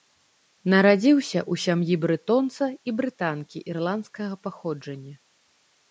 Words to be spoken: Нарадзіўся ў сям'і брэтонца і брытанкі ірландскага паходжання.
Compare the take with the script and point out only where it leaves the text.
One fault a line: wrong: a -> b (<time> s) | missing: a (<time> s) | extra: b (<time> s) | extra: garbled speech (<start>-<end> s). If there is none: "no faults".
no faults